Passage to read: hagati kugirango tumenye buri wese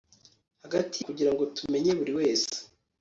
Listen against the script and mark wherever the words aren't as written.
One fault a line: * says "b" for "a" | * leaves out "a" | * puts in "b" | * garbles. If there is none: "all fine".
all fine